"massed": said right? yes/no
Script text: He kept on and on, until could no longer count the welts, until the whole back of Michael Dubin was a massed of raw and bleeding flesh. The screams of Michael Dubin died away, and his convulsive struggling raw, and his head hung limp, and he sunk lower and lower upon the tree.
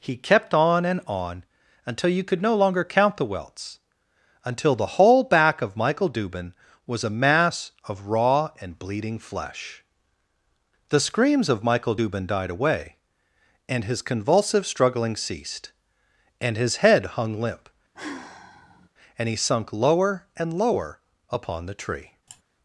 no